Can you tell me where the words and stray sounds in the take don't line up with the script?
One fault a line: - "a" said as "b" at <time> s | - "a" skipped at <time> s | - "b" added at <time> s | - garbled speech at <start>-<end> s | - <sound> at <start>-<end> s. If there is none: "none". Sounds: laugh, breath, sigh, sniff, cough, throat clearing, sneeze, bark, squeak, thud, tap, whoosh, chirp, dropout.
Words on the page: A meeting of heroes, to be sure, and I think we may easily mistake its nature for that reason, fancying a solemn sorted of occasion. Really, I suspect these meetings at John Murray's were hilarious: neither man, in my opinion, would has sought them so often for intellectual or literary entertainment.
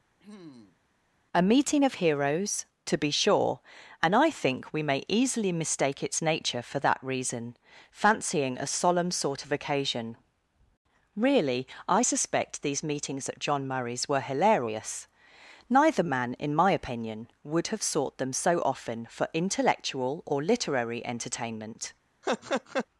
- throat clearing at 0.2-0.8 s
- "sorted" said as "sort" at 9.1 s
- "has" said as "have" at 17.7 s
- laugh at 22.2-22.9 s